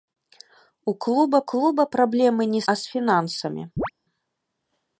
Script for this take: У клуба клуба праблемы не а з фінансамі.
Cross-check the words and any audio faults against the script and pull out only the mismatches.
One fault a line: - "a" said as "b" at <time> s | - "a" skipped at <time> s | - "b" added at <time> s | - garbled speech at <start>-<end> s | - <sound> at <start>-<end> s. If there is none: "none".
- chirp at 3.8-3.9 s